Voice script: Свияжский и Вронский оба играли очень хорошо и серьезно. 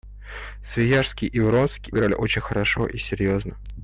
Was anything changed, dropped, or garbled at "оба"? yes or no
yes